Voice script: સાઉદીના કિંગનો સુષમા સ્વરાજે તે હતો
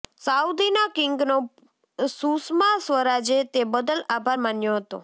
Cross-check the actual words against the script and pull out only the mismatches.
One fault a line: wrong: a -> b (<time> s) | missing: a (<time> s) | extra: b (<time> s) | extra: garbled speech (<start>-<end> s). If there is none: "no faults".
extra: બદલ આભાર માન્યો (3.6 s)